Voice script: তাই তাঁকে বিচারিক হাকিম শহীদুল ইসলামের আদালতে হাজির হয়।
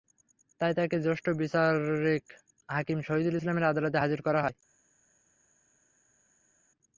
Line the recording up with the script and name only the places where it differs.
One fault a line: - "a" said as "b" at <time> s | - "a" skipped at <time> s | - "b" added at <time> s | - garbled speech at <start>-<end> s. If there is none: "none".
- "জ্যেষ্ঠ" added at 1.1 s
- "করা" added at 4.2 s